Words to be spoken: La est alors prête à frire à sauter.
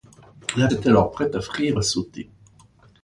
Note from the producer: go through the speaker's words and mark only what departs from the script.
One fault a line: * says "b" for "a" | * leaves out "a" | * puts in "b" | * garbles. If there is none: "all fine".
all fine